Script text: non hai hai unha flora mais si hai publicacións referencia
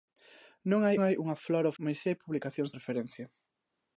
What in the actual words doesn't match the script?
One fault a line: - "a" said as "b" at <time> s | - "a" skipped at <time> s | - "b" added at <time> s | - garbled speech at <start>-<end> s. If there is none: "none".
none